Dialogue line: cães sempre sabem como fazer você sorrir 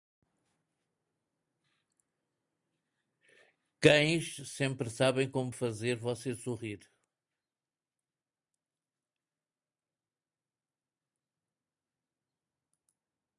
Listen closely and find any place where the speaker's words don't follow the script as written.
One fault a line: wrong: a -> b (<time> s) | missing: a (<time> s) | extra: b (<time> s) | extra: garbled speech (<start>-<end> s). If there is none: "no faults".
no faults